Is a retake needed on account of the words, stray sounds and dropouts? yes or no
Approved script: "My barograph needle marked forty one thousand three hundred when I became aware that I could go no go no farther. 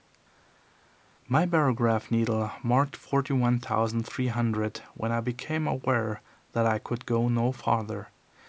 yes